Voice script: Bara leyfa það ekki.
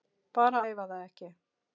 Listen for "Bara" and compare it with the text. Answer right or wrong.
right